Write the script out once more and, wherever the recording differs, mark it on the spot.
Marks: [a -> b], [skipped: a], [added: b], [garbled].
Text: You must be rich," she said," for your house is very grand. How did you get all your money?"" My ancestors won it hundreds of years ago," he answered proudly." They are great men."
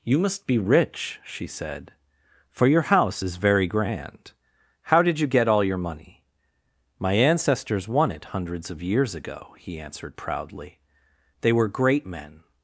You must be rich," she said," for your house is very grand. How did you get all your money?"" My ancestors won it hundreds of years ago," he answered proudly." They [are -> were] great men."